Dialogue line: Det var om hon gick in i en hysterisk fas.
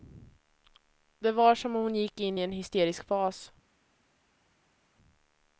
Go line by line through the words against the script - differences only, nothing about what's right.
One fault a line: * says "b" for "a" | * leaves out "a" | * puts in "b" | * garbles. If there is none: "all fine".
* puts in "som"